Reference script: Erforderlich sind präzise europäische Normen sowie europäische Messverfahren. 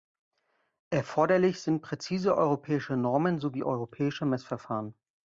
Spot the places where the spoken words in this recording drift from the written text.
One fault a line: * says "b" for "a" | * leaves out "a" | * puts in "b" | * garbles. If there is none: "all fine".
all fine